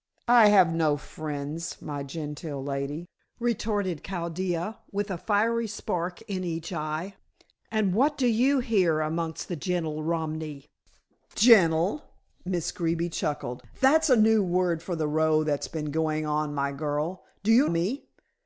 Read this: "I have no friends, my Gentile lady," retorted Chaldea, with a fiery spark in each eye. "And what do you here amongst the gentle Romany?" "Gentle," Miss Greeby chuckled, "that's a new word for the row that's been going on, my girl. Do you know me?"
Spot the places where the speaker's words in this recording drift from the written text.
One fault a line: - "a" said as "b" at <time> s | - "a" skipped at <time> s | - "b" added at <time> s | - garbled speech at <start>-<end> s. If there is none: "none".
- "know" skipped at 17.7 s